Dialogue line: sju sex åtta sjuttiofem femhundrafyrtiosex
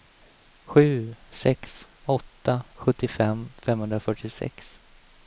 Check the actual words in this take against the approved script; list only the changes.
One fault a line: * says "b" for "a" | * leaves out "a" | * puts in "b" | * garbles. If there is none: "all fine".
all fine